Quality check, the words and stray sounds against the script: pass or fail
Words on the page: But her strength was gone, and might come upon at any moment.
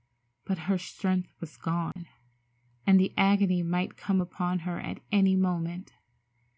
fail